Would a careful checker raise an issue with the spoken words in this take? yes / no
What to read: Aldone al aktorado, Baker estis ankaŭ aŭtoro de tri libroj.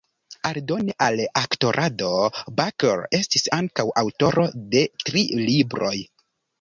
no